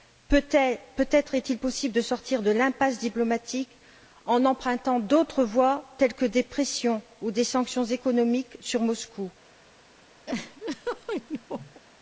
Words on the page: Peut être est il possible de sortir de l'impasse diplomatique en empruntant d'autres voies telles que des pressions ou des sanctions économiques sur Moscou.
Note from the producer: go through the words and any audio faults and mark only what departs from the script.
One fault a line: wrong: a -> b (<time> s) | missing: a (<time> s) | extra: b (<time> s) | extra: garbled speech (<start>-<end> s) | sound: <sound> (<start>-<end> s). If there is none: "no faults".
sound: laugh (10.3-11.8 s)